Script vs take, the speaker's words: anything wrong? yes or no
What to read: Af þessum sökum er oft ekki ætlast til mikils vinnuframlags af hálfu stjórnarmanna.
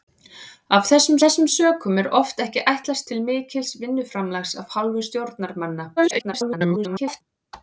yes